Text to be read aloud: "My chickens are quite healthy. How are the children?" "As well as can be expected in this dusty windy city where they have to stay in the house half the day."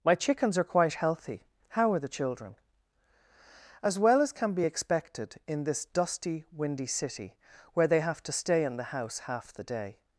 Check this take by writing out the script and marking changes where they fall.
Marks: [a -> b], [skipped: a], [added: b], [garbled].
"My chickens are quite healthy. How are the children?" "As well as can be expected in this dusty windy city where they have to stay in the house half the day."